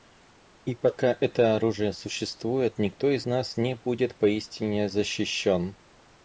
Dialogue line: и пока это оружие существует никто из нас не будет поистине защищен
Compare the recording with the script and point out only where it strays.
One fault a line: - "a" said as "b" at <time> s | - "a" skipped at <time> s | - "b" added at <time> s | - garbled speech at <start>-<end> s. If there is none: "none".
none